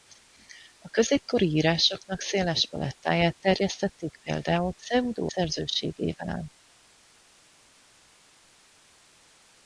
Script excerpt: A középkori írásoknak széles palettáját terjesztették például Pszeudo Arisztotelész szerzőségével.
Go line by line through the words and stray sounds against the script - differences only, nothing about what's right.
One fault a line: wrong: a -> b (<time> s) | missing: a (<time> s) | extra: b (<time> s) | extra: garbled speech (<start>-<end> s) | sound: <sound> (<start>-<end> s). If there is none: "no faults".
missing: Arisztotelész (5.3 s)